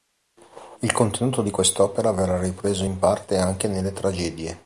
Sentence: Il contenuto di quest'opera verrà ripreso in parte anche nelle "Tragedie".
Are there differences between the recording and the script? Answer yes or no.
no